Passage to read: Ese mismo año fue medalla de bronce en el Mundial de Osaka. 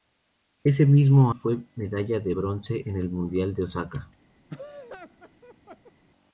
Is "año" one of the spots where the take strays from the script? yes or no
yes